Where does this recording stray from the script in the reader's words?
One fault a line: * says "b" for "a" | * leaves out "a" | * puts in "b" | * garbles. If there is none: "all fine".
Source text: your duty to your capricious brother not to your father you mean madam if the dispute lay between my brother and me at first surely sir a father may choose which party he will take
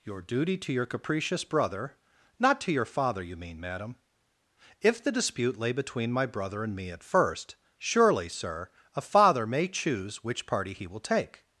all fine